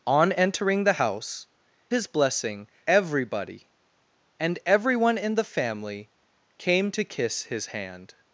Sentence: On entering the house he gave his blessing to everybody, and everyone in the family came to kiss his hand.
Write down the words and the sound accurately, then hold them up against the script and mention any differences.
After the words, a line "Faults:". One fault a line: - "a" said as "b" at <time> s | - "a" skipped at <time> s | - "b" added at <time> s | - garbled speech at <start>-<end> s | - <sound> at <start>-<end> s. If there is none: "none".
On entering the house his blessing everybody, and everyone in the family came to kiss his hand.
Faults:
- "he gave" skipped at 1.5 s
- "to" skipped at 2.7 s